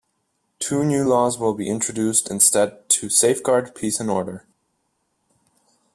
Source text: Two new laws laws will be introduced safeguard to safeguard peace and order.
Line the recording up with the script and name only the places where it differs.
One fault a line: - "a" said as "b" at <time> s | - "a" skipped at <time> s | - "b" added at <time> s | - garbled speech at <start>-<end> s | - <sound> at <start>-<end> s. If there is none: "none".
- "laws" skipped at 1.4 s
- "safeguard" said as "instead" at 2.3 s